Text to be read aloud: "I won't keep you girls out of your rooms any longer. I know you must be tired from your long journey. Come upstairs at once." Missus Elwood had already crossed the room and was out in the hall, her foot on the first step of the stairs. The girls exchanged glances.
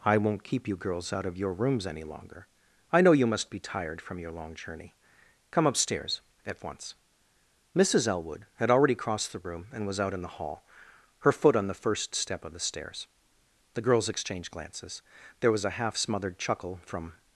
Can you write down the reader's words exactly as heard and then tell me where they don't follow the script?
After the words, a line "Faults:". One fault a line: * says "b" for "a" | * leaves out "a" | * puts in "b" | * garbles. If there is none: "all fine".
"I won't keep you girls out of your rooms any longer. I know you must be tired from your long journey. Come upstairs at once." Missus Elwood had already crossed the room and was out in the hall, her foot on the first step of the stairs. The girls exchanged glances. There was a half smothered chuckle from
Faults:
* puts in "There was a half smothered chuckle from"